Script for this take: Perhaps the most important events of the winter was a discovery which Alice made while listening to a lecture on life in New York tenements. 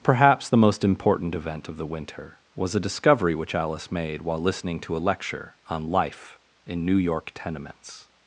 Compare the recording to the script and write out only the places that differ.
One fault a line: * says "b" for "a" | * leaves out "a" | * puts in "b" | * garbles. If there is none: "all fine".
* says "event" for "events"